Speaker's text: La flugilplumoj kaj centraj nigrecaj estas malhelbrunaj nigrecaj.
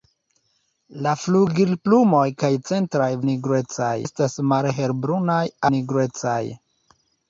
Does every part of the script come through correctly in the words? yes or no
yes